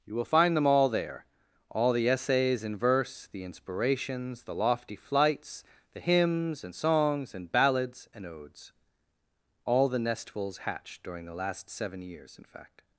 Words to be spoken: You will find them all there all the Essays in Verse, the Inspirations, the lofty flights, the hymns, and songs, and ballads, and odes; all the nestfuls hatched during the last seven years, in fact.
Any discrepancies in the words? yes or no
no